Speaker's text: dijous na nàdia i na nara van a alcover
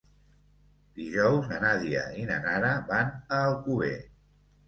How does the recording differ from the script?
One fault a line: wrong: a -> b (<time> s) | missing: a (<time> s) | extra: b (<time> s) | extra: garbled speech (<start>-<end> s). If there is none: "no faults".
no faults